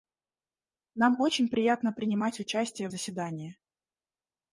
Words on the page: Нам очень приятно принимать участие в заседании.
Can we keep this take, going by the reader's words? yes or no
yes